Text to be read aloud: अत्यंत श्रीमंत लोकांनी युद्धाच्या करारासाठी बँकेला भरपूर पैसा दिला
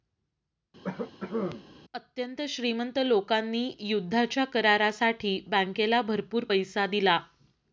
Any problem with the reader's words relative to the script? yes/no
no